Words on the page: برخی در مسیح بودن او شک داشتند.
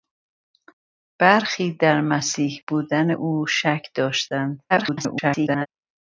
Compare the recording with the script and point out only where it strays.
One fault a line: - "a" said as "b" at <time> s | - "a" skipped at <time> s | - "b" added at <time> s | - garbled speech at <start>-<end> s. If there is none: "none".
- garbled speech at 4.7-5.7 s